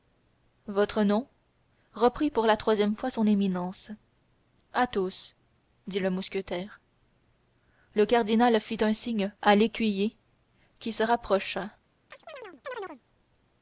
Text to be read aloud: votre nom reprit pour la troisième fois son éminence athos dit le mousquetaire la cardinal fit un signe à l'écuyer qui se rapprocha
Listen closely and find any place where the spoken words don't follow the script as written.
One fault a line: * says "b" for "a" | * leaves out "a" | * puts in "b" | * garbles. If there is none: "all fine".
* says "le" for "la"